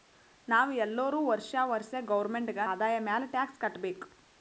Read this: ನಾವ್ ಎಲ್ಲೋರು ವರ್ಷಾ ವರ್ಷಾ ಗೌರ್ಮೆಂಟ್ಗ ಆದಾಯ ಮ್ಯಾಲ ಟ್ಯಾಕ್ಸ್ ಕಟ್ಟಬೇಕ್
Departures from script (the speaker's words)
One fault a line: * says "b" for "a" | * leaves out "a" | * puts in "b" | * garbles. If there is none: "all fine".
all fine